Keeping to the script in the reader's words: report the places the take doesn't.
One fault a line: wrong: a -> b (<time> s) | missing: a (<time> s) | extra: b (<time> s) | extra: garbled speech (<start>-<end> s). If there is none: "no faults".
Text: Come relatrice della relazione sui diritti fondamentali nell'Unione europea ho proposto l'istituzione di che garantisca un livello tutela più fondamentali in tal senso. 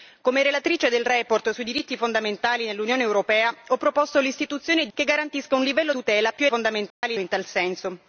no faults